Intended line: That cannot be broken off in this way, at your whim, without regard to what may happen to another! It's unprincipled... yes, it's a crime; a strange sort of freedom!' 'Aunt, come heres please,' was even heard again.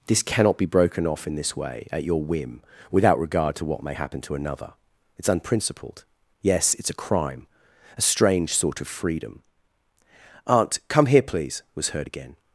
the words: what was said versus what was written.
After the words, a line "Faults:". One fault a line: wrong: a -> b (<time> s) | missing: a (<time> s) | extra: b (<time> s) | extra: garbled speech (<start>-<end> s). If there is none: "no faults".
This cannot be broken off in this way, at your whim, without regard to what may happen to another! It's unprincipled... yes, it's a crime; a strange sort of freedom!' 'Aunt, come here please,' was heard again.
Faults:
wrong: That -> This (0.1 s)
wrong: heres -> here (11.1 s)
missing: even (11.9 s)